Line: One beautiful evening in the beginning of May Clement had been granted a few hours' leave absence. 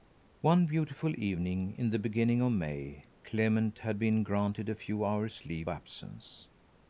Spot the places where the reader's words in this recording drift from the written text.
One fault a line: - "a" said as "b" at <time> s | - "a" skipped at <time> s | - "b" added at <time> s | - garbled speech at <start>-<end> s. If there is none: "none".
none